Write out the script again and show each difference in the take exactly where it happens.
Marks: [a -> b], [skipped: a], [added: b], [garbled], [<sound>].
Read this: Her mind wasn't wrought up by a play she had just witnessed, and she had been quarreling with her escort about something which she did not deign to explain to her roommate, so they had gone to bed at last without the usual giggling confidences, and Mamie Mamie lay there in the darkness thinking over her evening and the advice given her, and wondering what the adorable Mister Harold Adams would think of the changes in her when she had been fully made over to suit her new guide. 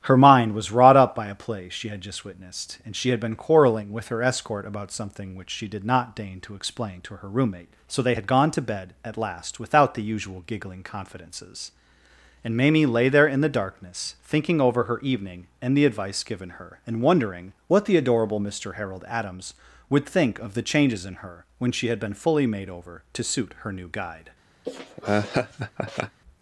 Her mind [wasn't -> was] wrought up by a play she had just witnessed, and she had been quarreling with her escort about something which she did not deign to explain to her roommate, so they had gone to bed at last without the usual giggling confidences, and Mamie [skipped: Mamie] lay there in the darkness thinking over her evening and the advice given her, and wondering what the adorable Mister Harold Adams would think of the changes in her when she had been fully made over to suit her new guide. [laugh]